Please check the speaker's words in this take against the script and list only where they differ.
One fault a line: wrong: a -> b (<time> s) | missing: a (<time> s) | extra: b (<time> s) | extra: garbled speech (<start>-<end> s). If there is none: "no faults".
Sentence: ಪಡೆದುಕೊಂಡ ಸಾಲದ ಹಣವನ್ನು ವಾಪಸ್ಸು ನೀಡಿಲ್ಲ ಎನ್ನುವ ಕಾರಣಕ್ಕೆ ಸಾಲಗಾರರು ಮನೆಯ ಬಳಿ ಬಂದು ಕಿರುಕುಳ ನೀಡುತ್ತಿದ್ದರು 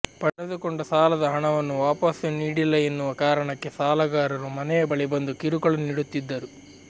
no faults